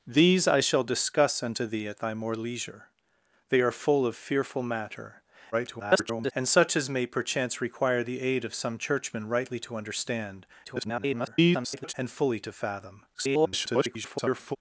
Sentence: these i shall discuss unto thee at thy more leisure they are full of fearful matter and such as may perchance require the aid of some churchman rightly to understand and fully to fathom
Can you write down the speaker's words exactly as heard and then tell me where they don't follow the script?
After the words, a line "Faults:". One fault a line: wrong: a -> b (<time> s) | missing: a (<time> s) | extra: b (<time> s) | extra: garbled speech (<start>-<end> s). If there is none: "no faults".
these i shall discuss unto thee at thy more leisure they are full of fearful matter [garbled] and such as may perchance require the aid of some churchman rightly to understand [garbled] and fully to fathom [garbled]
Faults:
extra: garbled speech (5.5-6.3 s)
extra: garbled speech (10.6-11.9 s)
extra: garbled speech (13.1-14.6 s)